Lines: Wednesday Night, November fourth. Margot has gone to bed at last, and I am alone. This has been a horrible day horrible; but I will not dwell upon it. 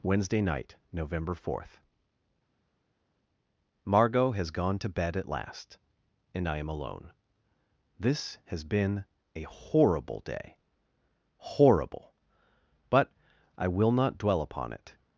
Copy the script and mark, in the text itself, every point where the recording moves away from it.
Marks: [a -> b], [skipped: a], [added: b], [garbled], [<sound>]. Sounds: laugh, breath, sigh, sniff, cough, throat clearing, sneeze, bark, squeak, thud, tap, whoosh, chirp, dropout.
Wednesday Night, November fourth. Margot has gone to bed at last, and I am alone. This has been a horrible day horrible; but I will not dwell upon it.